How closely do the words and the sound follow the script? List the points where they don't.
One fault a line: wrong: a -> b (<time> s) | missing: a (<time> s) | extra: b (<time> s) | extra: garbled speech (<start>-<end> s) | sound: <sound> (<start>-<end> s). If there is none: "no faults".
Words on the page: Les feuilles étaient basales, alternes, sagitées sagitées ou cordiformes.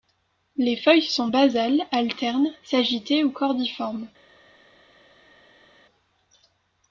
wrong: étaient -> sont (1.0 s)
missing: sagitées (3.2 s)